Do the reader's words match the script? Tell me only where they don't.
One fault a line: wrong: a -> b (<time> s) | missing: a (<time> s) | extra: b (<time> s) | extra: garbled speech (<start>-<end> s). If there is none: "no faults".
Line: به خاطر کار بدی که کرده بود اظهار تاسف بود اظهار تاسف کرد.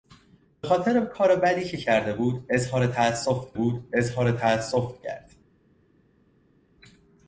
no faults